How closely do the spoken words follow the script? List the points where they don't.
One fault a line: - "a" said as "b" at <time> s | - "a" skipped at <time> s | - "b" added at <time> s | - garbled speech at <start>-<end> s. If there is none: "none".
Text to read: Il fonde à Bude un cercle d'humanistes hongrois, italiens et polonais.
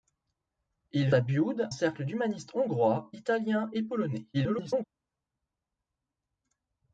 - "fonde" skipped at 1.1 s
- "un" skipped at 1.7 s
- garbled speech at 4.3-4.8 s